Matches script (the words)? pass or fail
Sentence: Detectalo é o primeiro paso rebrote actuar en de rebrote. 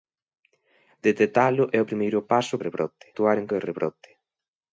pass